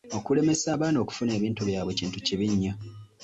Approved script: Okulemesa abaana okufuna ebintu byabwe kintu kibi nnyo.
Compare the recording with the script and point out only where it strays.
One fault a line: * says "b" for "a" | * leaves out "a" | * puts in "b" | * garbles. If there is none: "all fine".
all fine